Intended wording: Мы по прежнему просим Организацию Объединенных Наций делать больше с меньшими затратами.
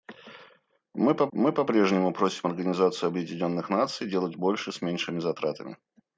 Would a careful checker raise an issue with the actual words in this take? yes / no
yes